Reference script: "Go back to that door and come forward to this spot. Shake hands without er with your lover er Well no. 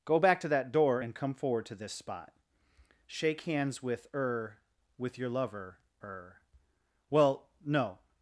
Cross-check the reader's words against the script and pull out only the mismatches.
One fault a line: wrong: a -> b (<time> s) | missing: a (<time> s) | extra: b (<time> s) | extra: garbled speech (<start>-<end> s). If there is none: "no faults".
wrong: without -> with (3.8 s)